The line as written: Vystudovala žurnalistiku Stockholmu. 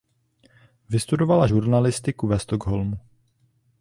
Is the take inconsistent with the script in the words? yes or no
yes